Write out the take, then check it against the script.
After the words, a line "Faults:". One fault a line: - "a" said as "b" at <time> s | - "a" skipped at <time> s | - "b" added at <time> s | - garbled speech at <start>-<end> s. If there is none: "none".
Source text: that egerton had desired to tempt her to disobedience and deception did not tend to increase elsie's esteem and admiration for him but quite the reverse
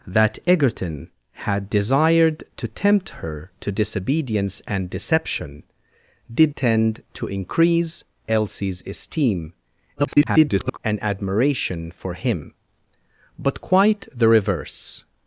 that egerton had desired to tempt her to disobedience and deception did tend to increase elsie's esteem [garbled] and admiration for him but quite the reverse
Faults:
- "not" skipped at 6.5 s
- garbled speech at 10.0-10.8 s